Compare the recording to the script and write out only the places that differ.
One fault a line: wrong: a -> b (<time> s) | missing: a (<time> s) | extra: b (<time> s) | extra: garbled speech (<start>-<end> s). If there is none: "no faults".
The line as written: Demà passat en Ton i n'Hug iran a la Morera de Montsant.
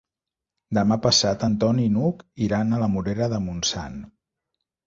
no faults